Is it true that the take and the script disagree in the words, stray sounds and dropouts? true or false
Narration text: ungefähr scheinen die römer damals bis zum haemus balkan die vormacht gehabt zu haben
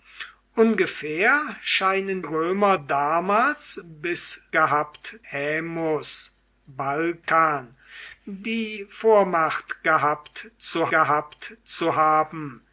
true